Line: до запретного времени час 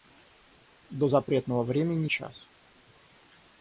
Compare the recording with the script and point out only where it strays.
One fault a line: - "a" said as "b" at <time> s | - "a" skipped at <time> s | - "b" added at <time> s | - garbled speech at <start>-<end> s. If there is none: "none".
none